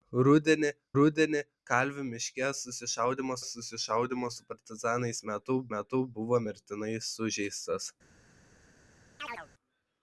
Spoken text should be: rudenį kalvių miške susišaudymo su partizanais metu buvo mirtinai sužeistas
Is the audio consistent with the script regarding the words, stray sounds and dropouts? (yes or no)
no